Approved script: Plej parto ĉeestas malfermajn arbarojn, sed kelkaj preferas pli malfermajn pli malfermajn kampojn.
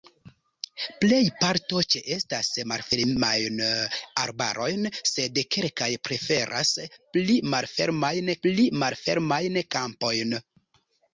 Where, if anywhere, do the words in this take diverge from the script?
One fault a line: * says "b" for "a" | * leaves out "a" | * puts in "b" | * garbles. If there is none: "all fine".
all fine